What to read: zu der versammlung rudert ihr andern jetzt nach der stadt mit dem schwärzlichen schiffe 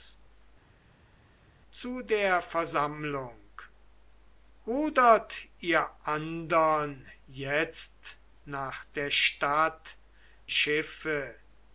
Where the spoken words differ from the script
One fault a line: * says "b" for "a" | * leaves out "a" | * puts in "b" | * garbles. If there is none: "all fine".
* leaves out "mit dem schwärzlichen"